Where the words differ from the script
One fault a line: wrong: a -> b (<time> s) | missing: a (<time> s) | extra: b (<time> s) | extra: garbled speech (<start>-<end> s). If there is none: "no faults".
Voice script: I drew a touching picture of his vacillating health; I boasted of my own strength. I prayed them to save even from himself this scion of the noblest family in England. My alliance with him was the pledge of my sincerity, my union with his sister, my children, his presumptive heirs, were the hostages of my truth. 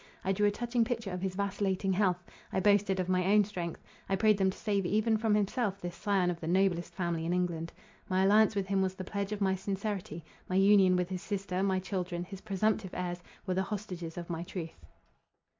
no faults